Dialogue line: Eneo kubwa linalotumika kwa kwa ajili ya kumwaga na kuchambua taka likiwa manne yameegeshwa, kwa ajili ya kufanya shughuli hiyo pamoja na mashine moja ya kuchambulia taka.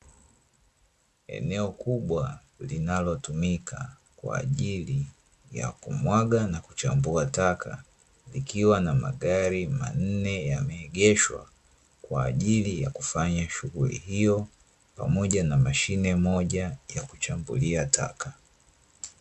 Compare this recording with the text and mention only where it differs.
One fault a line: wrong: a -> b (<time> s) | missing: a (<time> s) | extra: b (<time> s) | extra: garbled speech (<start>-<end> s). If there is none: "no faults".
missing: kwa (4.4 s)
extra: na magari (8.8 s)